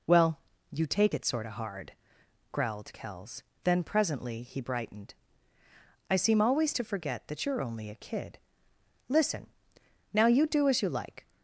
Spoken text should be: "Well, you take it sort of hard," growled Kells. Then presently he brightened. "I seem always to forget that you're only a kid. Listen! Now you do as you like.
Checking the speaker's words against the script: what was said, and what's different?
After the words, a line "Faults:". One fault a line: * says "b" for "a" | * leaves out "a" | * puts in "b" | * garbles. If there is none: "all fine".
"Well, you take it sort of hard," growled Kells. Then presently he brightened. "I seem always to forget that you're only a kid. Listen! Now you do as you like.
Faults:
all fine